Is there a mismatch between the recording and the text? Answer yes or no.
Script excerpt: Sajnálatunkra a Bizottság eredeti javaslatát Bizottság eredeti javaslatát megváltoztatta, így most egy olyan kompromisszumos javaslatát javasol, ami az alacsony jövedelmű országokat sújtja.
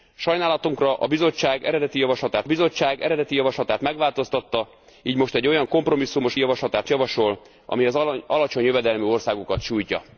no